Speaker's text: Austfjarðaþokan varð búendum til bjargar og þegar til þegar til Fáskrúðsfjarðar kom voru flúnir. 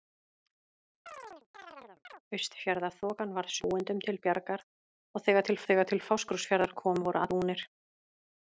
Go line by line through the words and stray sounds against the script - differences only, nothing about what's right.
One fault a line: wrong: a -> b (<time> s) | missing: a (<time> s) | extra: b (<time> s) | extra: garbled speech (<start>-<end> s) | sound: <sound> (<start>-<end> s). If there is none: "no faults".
sound: chirp (1.1-2.2 s)